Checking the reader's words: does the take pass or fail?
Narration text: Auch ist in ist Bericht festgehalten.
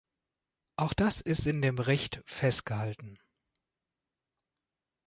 fail